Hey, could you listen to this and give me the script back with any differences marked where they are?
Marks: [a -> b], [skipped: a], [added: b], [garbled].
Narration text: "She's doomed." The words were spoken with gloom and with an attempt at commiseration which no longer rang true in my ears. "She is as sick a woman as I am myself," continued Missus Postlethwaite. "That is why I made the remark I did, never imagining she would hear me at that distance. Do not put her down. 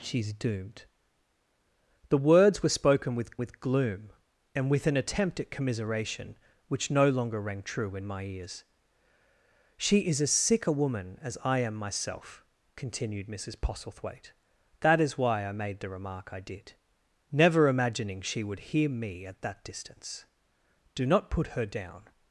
"She's doomed." The words were spoken with [added: with] gloom and with an attempt at commiseration which no longer rang true in my ears. "She is as sick a woman as I am myself," continued Missus Postlethwaite. "That is why I made the remark I did, never imagining she would hear me at that distance. Do not put her down.